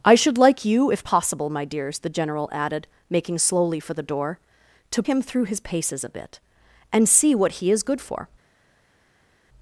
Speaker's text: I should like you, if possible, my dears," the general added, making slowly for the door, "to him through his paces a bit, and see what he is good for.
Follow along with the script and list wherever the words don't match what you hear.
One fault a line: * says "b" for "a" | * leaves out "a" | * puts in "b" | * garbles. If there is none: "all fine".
all fine